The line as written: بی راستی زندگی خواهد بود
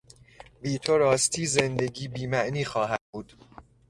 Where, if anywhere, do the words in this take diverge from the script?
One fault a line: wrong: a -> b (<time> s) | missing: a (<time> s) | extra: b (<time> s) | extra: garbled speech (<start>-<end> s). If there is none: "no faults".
extra: تو (0.8 s)
extra: بیمعنی (2.1 s)